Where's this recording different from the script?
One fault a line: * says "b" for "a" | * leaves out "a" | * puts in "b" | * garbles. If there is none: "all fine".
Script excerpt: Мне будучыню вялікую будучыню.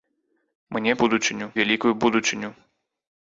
all fine